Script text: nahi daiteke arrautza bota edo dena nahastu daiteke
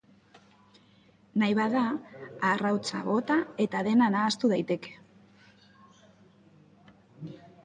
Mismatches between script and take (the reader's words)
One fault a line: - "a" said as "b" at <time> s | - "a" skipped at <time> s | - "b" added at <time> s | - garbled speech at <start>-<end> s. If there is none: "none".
- "daiteke" said as "bada" at 1.6 s
- "edo" said as "eta" at 3.7 s